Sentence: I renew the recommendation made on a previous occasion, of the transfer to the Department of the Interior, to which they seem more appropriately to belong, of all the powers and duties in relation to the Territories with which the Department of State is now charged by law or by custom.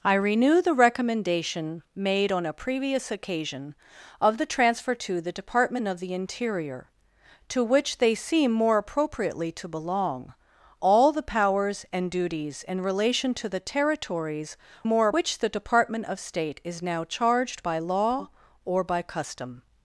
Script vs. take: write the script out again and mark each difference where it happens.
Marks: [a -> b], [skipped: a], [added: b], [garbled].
I renew the recommendation made on a previous occasion, of the transfer to the Department of the Interior, to which they seem more appropriately to belong, [skipped: of] all the powers and duties in relation to the Territories [with -> more] which the Department of State is now charged by law or by custom.